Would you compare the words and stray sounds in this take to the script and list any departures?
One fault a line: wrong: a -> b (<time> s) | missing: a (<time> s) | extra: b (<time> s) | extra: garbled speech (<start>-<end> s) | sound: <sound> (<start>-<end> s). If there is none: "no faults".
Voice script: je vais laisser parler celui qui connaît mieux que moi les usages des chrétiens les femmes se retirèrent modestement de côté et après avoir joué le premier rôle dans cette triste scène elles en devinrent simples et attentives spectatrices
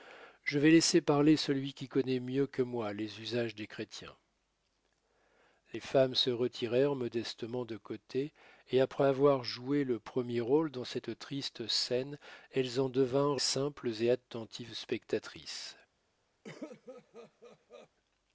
sound: cough (16.4-17.9 s)